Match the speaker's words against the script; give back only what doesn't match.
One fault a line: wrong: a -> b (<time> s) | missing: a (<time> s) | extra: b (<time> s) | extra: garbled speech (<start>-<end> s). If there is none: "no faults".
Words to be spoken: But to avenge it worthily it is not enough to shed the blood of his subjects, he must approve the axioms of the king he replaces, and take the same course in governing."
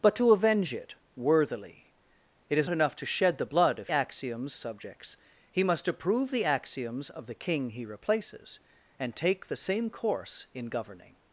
missing: not (2.7 s)
wrong: his -> axioms (3.9 s)